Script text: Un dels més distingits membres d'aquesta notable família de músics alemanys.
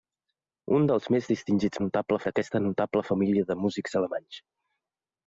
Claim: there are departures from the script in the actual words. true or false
true